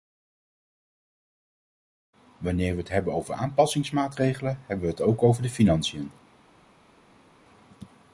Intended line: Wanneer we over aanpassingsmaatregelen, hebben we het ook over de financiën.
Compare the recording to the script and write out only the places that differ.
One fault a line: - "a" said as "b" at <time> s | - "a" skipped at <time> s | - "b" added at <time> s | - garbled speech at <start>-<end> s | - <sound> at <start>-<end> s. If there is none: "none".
- "het hebben" added at 2.8 s